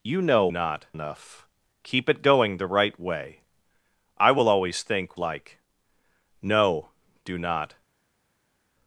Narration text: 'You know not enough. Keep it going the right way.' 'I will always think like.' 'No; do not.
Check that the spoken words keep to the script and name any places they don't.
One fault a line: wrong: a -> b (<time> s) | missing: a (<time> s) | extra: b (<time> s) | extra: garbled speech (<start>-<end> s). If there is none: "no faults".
no faults